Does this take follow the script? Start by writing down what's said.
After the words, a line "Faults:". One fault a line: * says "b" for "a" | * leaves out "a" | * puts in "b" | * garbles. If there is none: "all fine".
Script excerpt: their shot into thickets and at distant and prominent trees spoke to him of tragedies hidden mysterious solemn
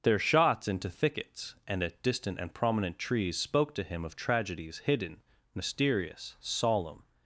their shots into thickets and at distant and prominent trees spoke to him of tragedies hidden mysterious solemn
Faults:
* says "shots" for "shot"